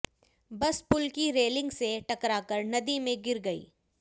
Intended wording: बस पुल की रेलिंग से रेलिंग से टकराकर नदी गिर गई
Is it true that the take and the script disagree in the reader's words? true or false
true